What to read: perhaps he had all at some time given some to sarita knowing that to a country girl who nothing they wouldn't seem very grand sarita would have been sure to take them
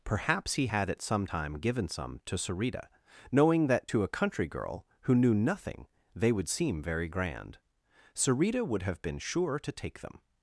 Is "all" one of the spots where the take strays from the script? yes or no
yes